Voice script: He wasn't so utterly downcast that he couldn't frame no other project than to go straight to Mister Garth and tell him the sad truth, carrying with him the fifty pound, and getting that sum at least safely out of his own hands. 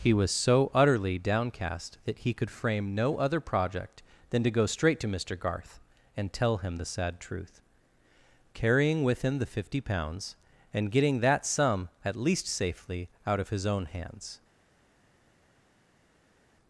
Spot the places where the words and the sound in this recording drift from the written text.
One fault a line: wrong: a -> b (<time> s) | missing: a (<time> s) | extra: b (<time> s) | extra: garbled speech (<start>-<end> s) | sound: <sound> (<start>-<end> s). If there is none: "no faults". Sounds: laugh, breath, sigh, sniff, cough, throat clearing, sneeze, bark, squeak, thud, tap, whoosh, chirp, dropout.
wrong: wasn't -> was (0.1 s)
wrong: couldn't -> could (2.3 s)
wrong: pound -> pounds (9.8 s)